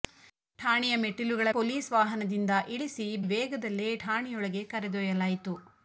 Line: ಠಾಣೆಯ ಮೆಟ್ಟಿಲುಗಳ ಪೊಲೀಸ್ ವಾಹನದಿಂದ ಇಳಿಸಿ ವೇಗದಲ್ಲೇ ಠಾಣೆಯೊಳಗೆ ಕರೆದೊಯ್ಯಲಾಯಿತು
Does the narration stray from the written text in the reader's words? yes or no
no